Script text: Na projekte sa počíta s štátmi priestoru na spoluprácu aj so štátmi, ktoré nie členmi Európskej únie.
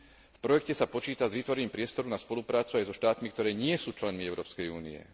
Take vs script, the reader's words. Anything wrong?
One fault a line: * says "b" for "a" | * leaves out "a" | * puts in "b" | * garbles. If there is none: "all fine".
* says "V" for "Na"
* says "vytvorením" for "štátmi"
* puts in "sú"